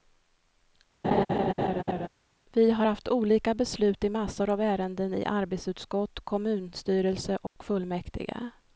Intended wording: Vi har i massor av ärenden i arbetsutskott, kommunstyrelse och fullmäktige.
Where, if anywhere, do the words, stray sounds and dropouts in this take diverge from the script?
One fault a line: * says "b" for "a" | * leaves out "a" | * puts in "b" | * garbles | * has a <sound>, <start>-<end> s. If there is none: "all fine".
* has a laugh, 1.0-2.1 s
* puts in "haft olika beslut"
* has a dropout, 7.5-7.6 s